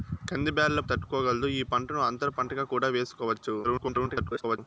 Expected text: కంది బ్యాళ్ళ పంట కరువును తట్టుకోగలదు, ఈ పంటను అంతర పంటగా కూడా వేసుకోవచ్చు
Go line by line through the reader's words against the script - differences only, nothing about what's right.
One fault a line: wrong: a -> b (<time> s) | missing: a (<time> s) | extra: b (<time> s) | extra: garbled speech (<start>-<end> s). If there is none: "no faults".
missing: పంట కరువును (0.8 s)
extra: garbled speech (3.6-4.6 s)